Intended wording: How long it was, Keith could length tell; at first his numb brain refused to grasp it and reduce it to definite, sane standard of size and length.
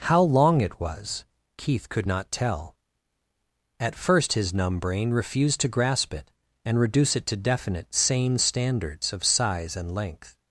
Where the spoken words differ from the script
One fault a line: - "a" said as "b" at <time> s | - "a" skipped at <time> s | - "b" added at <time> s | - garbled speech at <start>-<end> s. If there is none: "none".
- "length" said as "not" at 2.1 s
- "standard" said as "standards" at 8.4 s